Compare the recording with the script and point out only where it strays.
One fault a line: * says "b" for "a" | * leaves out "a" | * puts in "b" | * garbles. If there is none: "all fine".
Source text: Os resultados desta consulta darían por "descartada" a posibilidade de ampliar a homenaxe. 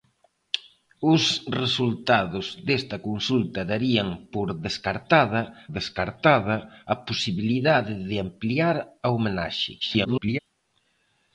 * puts in "descartada"
* garbles